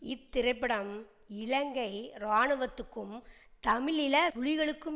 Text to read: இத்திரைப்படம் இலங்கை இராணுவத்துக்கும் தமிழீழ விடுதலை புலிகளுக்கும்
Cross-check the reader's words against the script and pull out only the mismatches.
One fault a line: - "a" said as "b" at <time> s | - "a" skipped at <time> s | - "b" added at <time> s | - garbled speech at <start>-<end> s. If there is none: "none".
- "விடுதலை" skipped at 4.2 s